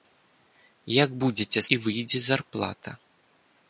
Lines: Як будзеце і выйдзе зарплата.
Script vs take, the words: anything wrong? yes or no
no